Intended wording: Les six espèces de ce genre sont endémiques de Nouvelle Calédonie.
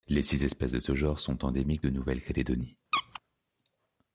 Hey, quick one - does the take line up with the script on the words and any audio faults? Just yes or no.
no